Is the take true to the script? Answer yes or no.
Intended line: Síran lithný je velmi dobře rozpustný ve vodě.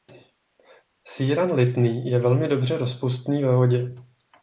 yes